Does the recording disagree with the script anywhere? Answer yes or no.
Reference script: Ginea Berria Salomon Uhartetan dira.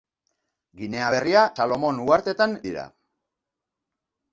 no